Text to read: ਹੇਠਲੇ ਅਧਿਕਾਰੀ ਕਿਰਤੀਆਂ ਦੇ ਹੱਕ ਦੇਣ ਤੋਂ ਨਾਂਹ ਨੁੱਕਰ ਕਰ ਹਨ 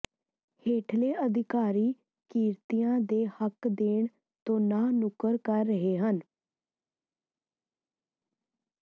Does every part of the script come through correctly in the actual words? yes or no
no